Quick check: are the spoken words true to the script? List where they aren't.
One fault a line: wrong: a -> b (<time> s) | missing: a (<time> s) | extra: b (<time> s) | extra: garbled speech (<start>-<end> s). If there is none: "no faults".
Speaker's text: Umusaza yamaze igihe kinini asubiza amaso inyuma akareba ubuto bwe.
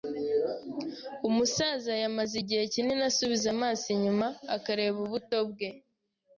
no faults